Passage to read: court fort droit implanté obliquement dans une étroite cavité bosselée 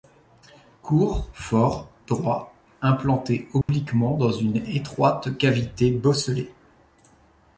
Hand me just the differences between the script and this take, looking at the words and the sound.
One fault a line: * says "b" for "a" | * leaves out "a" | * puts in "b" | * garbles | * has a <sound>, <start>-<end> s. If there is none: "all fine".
* has a dropout, 3.6-3.7 s